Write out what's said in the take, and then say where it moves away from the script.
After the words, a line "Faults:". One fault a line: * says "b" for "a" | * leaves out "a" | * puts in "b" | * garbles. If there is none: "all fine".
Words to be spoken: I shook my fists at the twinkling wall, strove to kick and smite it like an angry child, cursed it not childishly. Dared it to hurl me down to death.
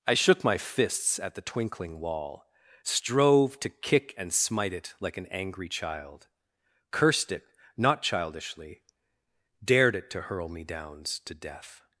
I shook my fists at the twinkling wall, strove to kick and smite it like an angry child, cursed it not childishly. Dared it to hurl me downs to death.
Faults:
* says "downs" for "down"